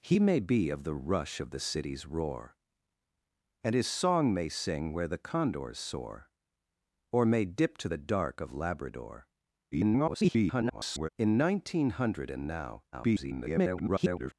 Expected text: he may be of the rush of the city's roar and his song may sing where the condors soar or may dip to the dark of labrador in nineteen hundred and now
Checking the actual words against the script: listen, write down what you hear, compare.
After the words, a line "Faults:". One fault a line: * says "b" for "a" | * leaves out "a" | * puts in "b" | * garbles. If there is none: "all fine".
he may be of the rush of the city's roar and his song may sing where the condors soar or may dip to the dark of labrador [garbled] in nineteen hundred and now [garbled]
Faults:
* garbles
* garbles